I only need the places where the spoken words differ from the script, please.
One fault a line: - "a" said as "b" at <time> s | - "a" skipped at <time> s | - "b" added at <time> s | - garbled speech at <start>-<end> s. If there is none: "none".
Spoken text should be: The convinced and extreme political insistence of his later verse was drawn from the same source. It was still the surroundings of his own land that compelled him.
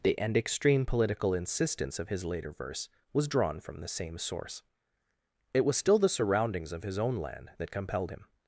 - "convinced" skipped at 0.2 s